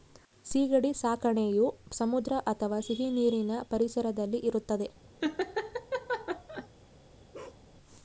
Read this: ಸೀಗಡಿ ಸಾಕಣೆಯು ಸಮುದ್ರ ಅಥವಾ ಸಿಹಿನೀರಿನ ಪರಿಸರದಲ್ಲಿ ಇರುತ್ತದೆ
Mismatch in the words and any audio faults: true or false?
true